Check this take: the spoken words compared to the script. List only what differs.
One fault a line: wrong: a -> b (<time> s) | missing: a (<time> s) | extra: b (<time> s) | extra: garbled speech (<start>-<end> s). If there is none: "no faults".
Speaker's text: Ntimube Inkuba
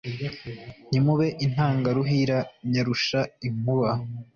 extra: Intangaruhira nyarusha (1.4 s)